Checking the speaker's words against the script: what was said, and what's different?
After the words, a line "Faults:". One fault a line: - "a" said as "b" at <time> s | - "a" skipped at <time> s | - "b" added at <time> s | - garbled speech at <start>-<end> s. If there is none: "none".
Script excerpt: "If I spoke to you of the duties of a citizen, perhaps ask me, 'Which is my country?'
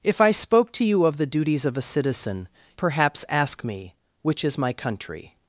"If I spoke to you of the duties of a citizen, perhaps ask me, 'Which is my country?'
Faults:
none